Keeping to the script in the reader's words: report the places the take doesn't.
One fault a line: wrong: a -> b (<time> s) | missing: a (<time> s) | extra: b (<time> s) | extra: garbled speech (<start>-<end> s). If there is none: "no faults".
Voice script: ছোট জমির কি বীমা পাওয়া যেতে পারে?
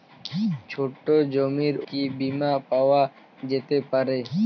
no faults